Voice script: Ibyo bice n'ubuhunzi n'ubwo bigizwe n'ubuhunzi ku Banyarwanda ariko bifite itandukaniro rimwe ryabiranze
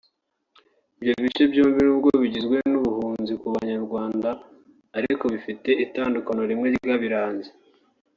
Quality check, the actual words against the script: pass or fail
fail